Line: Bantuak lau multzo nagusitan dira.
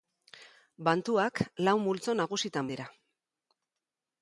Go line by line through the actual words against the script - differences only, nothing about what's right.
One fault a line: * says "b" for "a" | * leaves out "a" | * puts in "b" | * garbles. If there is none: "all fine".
all fine